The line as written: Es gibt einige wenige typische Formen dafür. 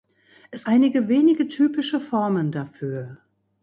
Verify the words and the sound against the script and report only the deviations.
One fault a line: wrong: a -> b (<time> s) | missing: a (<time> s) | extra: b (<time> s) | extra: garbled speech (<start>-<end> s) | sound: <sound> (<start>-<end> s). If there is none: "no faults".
missing: gibt (0.7 s)